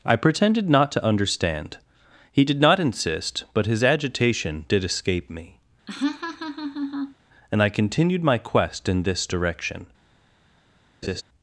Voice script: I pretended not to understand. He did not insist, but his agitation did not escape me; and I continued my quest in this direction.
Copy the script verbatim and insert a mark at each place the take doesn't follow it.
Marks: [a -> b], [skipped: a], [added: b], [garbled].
I pretended not to understand. He did not insist, but his agitation did [skipped: not] escape me; and I continued my quest in this direction.